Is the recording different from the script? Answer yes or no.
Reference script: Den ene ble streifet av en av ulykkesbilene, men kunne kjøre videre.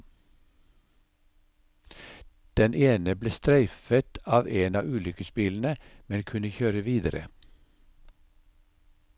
no